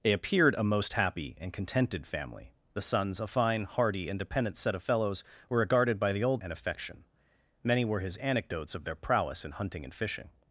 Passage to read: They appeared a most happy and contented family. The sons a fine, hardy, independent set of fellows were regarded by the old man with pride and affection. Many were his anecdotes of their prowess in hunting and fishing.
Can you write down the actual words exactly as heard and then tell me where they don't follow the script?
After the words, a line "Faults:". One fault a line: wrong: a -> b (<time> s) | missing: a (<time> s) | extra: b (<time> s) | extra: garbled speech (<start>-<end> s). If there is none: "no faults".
They appeared a most happy and contented family. The sons a fine, hardy, independent set of fellows were regarded by the old and affection. Many were his anecdotes of their prowess in hunting and fishing.
Faults:
missing: man with pride (6.4 s)